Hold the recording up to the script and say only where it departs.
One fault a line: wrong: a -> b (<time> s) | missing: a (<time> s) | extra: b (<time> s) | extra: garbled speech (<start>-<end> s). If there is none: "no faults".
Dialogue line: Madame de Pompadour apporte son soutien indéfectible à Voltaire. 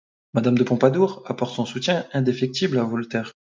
no faults